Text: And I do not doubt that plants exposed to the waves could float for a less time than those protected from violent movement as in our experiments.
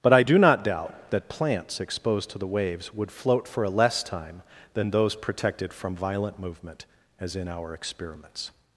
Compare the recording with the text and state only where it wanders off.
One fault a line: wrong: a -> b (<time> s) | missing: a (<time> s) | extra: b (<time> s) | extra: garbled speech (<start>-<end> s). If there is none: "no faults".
wrong: And -> But (0.0 s)
wrong: could -> would (2.9 s)